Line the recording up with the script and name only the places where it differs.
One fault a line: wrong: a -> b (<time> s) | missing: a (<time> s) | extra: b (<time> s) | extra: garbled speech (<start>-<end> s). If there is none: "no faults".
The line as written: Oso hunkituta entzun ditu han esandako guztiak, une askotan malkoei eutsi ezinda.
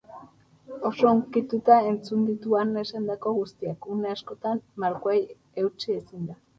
no faults